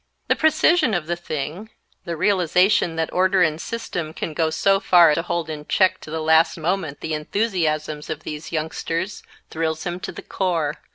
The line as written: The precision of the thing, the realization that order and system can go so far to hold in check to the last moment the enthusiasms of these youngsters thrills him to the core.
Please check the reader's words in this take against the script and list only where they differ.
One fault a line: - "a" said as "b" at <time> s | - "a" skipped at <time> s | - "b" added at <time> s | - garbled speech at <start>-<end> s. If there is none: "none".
none